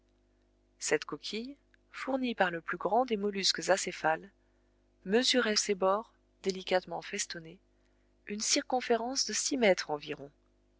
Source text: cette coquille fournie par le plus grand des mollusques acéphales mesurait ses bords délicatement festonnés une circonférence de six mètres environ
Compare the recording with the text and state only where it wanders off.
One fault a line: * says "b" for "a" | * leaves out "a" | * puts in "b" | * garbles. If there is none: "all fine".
all fine